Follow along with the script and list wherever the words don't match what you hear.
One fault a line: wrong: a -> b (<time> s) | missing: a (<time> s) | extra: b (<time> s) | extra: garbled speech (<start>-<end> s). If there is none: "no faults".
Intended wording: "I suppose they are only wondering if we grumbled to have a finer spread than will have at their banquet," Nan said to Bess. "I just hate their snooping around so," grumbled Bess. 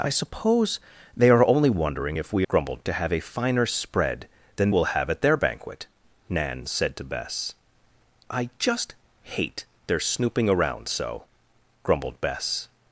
no faults